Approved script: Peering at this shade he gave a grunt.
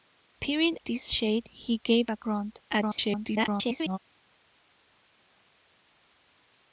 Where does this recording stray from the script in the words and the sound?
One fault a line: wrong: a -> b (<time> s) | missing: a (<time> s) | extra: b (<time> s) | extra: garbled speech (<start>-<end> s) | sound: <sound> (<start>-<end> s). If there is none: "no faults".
missing: at (0.8 s)
extra: garbled speech (2.7-4.0 s)